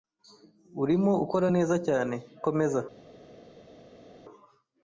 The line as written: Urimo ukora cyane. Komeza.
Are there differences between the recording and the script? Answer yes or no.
yes